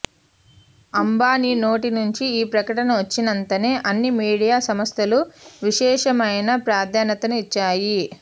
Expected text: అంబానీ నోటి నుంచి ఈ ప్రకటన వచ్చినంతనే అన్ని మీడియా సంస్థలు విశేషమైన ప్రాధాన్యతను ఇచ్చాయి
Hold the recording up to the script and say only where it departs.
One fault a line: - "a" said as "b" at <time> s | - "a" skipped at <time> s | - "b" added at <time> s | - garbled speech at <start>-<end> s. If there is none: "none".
none